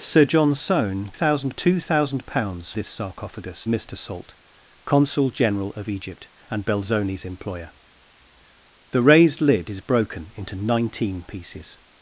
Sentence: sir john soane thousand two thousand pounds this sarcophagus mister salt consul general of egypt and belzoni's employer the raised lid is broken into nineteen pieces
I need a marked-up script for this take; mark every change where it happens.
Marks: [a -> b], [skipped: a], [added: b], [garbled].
sir john soane thousand two thousand pounds this sarcophagus mister salt consul general of egypt and belzoni's employer the raised lid is broken into nineteen pieces